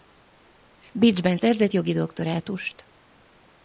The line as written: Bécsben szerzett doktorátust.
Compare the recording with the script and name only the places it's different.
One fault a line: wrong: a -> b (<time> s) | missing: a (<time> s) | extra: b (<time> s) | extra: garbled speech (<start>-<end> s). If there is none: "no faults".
extra: jogi (1.7 s)